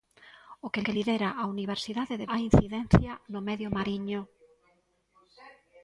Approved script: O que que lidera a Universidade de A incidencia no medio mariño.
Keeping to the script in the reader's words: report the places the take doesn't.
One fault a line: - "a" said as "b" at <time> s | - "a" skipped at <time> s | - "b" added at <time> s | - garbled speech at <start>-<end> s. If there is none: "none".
none